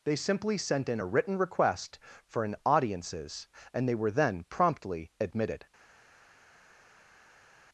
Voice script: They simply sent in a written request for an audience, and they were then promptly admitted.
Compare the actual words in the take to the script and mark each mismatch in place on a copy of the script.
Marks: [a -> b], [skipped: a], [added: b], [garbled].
They simply sent in a written request for an [audience, -> audiences] and they were then promptly admitted.